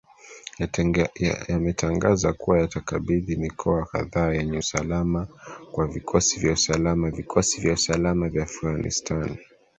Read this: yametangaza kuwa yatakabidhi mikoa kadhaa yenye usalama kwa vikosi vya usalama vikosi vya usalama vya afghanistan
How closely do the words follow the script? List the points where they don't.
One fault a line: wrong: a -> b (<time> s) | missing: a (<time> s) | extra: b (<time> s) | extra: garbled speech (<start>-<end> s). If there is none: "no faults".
no faults